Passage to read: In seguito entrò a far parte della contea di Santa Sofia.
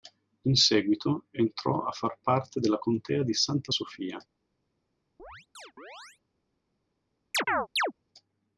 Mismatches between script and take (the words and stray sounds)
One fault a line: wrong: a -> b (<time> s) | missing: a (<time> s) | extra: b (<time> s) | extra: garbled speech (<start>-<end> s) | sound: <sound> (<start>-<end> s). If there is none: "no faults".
sound: chirp (5.2-6.2 s)
sound: chirp (7.3-7.9 s)